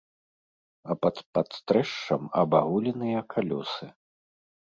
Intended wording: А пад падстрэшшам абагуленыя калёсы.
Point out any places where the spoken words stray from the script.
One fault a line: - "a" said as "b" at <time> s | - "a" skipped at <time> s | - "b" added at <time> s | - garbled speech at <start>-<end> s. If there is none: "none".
none